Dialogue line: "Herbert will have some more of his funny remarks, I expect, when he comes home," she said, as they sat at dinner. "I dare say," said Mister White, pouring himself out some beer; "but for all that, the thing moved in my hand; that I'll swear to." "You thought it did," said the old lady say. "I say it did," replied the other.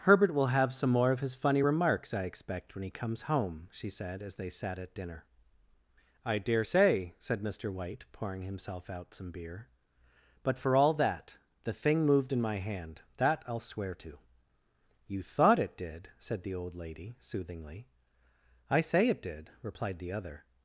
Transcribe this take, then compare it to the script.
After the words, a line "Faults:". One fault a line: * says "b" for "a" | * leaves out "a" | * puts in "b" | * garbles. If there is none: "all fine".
"Herbert will have some more of his funny remarks, I expect, when he comes home," she said, as they sat at dinner. "I dare say," said Mister White, pouring himself out some beer; "but for all that, the thing moved in my hand; that I'll swear to." "You thought it did," said the old lady soothingly. "I say it did," replied the other.
Faults:
* says "soothingly" for "say"